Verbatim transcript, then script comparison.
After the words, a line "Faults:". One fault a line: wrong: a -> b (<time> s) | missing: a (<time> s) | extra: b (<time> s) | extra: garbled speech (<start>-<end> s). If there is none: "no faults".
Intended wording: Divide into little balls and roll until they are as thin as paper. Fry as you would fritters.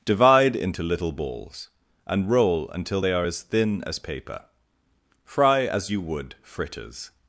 Divide into little balls and roll until they are as thin as paper. Fry as you would fritters.
Faults:
no faults